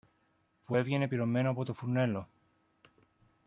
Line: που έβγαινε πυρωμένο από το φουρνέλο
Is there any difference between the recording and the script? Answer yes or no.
no